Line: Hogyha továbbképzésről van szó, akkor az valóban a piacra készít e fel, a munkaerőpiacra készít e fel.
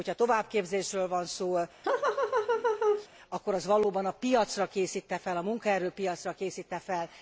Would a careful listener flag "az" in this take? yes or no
no